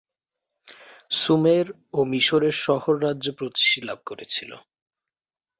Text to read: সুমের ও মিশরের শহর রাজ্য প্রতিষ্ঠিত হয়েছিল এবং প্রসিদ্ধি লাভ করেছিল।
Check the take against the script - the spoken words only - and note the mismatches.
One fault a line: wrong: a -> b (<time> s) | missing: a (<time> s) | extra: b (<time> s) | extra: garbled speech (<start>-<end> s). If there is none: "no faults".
missing: হয়েছিল এবং প্রসিদ্ধি (3.9 s)